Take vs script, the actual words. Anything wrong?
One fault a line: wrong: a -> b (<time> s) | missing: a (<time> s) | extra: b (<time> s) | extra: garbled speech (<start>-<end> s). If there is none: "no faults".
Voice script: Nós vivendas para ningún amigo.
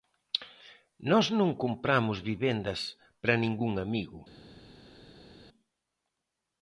extra: non compramos (1.4 s)